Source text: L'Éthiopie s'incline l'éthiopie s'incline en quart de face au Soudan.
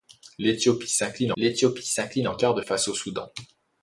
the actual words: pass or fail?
pass